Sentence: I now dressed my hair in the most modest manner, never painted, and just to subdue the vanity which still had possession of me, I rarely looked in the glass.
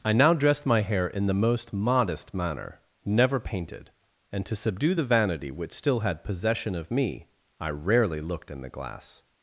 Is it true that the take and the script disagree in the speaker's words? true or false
true